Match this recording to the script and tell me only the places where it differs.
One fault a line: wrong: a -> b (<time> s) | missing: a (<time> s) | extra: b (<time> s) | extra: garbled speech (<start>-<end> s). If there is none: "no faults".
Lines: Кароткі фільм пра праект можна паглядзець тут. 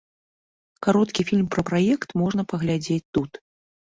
no faults